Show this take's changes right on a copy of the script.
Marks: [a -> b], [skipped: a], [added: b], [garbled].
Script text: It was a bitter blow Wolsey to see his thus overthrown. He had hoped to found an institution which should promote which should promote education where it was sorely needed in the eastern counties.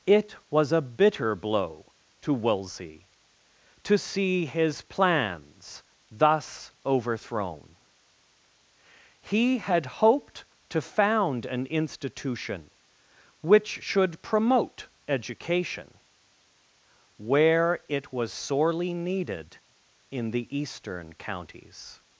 It was a bitter blow [added: to] Wolsey to see his [added: plans] thus overthrown. He had hoped to found an institution which should promote [skipped: which should promote] education where it was sorely needed in the eastern counties.